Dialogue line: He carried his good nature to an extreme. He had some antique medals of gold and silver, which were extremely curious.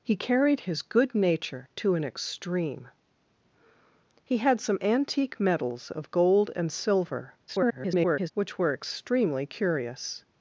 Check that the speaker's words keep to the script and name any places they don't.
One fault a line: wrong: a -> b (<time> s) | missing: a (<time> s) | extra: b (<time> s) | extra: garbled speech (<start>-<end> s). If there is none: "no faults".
extra: garbled speech (7.5-8.3 s)